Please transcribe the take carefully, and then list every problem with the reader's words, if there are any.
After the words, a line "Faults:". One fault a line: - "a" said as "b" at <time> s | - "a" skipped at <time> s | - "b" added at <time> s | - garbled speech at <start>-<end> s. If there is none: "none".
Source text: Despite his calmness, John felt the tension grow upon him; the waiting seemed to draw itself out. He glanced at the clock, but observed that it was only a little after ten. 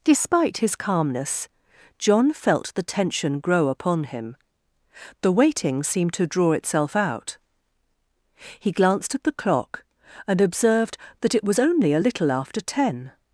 Despite his calmness, John felt the tension grow upon him; the waiting seemed to draw itself out. He glanced at the clock, and observed that it was only a little after ten.
Faults:
- "but" said as "and" at 10.3 s